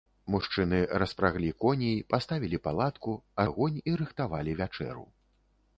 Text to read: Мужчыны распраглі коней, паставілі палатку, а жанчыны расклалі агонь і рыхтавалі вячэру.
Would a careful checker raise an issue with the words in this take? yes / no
yes